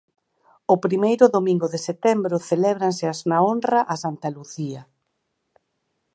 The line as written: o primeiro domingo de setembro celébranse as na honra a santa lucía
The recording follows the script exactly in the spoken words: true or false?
true